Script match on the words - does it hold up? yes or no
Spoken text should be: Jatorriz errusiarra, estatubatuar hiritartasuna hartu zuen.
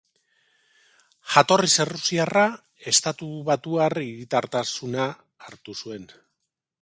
yes